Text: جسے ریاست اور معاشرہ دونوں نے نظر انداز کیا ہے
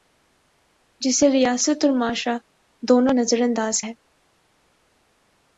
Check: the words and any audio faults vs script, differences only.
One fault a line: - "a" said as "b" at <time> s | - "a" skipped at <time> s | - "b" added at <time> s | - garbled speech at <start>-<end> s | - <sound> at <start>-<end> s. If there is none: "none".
- "نے" skipped at 3.1 s
- "کیا" skipped at 3.8 s